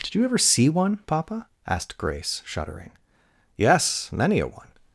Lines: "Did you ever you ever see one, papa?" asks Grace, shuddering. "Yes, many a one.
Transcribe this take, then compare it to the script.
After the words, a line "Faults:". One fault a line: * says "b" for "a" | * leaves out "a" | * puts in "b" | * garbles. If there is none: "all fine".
"Did you ever see one, papa?" asked Grace, shuddering. "Yes, many a one.
Faults:
* leaves out "you ever"
* says "asked" for "asks"